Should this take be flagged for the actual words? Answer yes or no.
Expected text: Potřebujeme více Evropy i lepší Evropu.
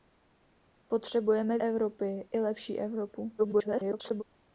yes